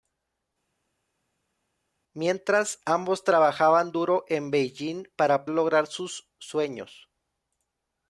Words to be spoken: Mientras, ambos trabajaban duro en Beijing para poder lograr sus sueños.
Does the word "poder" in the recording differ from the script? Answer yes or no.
yes